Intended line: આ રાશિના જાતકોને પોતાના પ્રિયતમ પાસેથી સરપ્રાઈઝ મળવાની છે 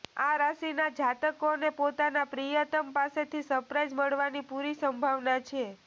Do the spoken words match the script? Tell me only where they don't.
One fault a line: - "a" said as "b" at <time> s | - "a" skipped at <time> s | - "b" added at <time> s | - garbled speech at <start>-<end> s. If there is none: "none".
- "પૂરી સંભાવના" added at 4.5 s